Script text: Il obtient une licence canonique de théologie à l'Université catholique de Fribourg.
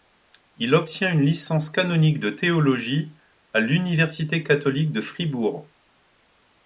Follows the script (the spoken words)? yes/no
yes